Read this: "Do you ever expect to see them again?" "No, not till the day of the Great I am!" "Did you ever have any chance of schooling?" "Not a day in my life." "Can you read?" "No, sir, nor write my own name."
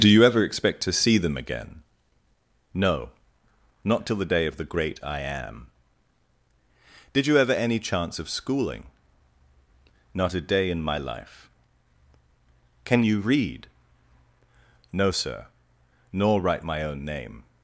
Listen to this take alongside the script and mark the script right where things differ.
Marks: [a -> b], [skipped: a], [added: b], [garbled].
"Do you ever expect to see them again?" "No, not till the day of the Great I am!" "Did you ever [skipped: have] any chance of schooling?" "Not a day in my life." "Can you read?" "No, sir, nor write my own name."